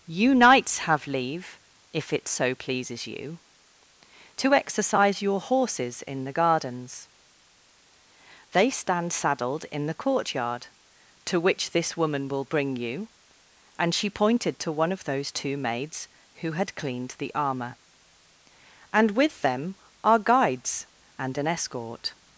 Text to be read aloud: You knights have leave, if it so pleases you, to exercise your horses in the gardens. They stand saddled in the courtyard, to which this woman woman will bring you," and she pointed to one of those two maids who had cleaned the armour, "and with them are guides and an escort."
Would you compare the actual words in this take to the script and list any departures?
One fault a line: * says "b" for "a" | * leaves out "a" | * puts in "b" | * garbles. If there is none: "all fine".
* leaves out "woman"